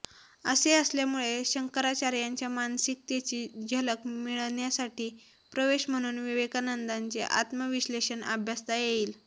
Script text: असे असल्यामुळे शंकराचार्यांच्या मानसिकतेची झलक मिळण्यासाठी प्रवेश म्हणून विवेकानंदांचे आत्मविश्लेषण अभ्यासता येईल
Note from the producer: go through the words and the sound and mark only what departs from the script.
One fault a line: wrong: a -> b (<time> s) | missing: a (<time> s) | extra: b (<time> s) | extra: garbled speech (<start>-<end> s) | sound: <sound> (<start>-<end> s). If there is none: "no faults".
no faults